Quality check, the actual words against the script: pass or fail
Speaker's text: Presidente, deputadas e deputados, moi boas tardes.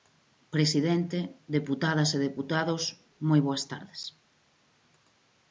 pass